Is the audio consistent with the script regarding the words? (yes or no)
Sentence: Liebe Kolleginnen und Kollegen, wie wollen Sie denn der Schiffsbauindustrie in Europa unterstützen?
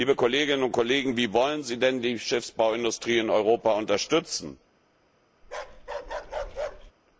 no